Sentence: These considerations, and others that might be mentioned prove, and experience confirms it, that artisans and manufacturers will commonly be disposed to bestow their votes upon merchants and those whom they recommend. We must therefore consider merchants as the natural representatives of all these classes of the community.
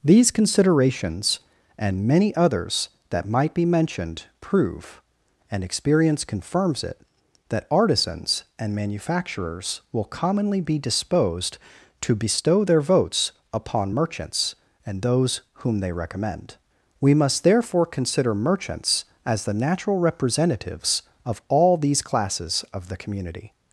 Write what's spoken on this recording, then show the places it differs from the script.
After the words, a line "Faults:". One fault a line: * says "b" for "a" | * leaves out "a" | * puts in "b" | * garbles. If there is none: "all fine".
These considerations, and many others that might be mentioned prove, and experience confirms it, that artisans and manufacturers will commonly be disposed to bestow their votes upon merchants and those whom they recommend. We must therefore consider merchants as the natural representatives of all these classes of the community.
Faults:
* puts in "many"